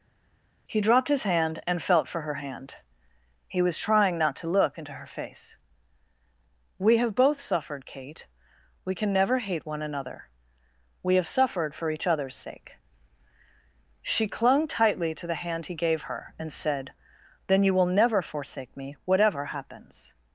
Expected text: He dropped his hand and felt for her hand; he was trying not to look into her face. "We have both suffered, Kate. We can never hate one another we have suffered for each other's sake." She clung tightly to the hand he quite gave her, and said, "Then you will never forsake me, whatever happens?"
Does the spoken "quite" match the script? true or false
false